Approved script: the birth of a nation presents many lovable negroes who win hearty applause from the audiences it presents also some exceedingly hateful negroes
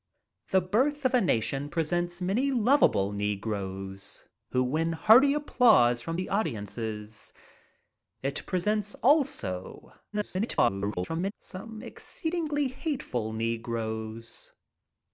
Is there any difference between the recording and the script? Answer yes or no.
yes